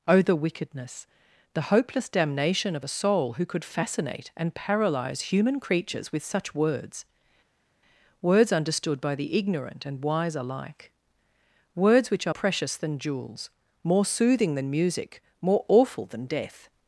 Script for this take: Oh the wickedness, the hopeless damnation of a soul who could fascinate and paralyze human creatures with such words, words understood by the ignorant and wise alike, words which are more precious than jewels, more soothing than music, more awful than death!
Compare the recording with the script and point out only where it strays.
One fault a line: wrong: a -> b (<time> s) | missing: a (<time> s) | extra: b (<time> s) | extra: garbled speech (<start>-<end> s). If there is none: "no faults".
missing: more (12.3 s)